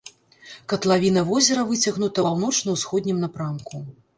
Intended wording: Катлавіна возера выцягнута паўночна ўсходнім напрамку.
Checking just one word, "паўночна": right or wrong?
right